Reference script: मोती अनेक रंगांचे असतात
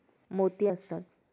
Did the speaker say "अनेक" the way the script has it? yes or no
no